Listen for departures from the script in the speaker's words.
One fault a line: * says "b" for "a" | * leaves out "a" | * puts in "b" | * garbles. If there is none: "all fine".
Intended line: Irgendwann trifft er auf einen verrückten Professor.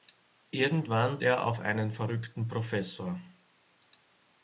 * leaves out "trifft"